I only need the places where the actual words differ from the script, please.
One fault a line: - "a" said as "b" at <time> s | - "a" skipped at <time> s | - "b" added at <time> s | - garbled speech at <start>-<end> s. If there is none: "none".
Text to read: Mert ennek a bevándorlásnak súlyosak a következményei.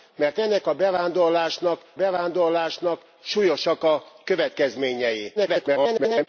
- "bevándorlásnak" added at 1.9 s
- garbled speech at 5.4-6.3 s